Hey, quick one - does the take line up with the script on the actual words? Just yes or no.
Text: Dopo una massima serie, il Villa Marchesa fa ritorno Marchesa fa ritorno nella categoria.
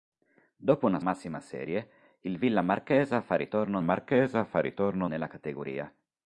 yes